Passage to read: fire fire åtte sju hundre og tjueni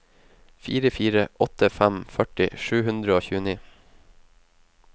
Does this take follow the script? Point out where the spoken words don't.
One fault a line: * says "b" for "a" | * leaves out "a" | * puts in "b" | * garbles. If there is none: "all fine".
* puts in "fem førti"